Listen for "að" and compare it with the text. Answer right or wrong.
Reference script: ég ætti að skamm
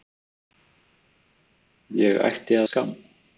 wrong